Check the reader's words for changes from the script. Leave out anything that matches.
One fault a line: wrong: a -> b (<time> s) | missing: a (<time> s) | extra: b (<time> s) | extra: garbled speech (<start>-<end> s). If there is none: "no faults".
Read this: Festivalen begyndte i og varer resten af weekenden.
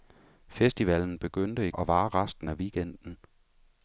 no faults